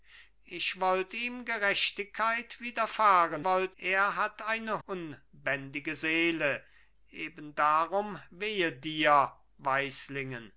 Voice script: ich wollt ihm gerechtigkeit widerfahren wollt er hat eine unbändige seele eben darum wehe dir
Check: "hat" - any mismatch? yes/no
no